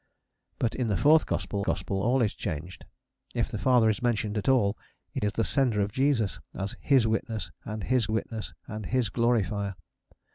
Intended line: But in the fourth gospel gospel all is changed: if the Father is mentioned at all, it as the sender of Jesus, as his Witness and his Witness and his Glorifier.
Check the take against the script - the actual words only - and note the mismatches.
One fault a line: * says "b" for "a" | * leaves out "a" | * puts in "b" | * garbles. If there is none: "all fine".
all fine